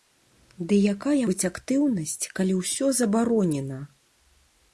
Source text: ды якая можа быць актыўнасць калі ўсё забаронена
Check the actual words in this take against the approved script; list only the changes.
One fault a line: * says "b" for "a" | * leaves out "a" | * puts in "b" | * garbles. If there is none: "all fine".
* leaves out "можа"